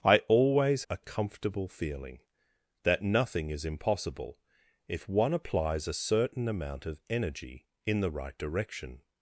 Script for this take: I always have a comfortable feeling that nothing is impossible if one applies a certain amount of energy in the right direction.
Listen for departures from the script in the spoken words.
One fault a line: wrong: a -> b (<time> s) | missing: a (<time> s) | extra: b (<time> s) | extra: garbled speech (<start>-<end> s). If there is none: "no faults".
missing: have (0.8 s)